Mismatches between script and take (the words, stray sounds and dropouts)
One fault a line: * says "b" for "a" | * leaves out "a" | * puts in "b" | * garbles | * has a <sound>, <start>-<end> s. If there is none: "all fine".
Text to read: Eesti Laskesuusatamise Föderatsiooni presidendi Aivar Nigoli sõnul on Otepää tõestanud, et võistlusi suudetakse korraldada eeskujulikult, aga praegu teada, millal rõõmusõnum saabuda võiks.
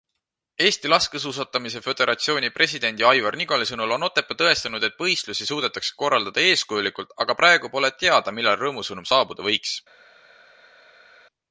* puts in "pole"